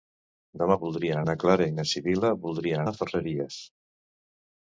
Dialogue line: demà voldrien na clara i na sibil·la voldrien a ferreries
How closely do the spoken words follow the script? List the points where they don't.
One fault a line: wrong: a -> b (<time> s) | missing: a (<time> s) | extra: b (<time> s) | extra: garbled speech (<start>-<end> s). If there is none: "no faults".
no faults